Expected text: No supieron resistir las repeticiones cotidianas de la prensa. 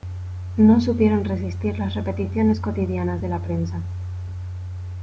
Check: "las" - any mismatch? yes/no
no